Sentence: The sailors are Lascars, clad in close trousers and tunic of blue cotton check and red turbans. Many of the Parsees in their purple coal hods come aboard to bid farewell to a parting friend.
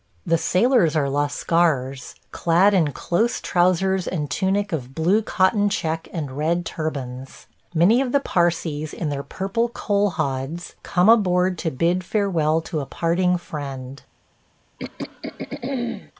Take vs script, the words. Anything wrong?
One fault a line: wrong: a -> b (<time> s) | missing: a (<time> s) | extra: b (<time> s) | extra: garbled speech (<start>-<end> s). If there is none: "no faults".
no faults